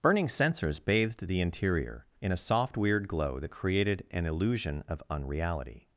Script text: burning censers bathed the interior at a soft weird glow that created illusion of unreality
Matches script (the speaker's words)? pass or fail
fail